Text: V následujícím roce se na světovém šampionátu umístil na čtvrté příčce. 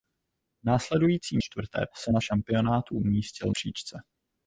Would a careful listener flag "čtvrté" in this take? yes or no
yes